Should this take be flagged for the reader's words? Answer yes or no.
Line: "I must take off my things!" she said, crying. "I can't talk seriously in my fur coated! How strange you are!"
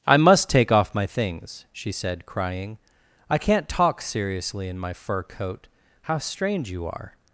yes